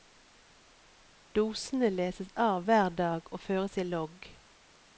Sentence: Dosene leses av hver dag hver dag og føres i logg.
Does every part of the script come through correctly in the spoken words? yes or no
no